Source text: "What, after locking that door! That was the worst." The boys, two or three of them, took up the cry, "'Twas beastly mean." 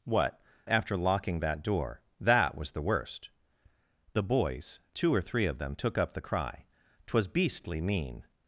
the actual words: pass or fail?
pass